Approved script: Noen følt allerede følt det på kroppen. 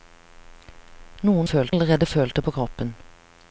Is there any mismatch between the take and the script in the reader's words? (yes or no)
no